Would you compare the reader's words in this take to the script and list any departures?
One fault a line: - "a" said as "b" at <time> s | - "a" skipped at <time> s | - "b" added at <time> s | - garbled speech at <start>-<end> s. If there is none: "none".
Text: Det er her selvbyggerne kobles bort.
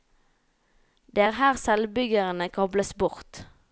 none